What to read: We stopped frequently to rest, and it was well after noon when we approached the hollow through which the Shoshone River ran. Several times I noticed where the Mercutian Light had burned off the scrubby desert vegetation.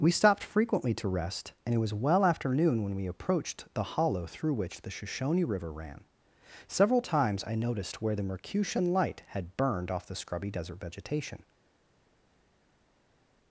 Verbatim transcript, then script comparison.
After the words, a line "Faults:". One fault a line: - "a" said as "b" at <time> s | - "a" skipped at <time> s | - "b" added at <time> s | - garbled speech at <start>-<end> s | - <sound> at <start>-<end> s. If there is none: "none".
We stopped frequently to rest, and it was well after noon when we approached the hollow through which the Shoshone River ran. Several times I noticed where the Mercutian Light had burned off the scrubby desert vegetation.
Faults:
none